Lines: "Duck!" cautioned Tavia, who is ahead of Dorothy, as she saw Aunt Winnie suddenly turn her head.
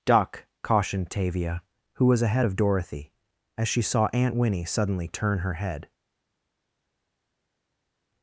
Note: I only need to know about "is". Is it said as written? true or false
false